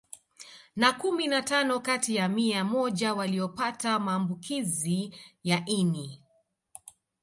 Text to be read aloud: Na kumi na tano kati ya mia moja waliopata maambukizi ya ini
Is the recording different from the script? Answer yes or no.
no